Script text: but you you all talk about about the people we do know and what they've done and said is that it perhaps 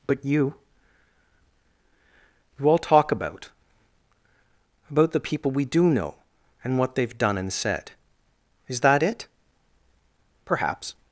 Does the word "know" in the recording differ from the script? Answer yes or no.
no